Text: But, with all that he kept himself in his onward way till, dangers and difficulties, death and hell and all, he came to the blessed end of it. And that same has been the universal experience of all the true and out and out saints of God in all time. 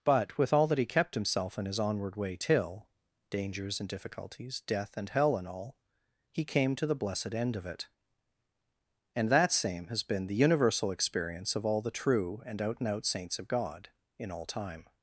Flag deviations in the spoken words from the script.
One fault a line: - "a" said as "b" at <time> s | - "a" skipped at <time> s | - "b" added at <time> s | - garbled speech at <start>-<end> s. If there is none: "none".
none